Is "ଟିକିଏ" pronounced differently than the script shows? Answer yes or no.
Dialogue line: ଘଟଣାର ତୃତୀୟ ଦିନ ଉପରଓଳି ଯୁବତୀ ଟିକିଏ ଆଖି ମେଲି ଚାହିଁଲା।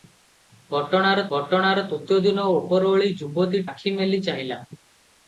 yes